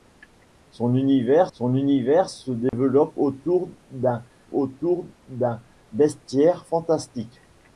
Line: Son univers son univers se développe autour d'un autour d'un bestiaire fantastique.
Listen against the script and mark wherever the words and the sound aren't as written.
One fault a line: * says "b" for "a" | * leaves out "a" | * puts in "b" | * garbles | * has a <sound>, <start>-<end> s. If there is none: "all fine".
* has a dropout, 2.7-2.7 s